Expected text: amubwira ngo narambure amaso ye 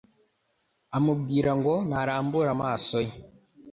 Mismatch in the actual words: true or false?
false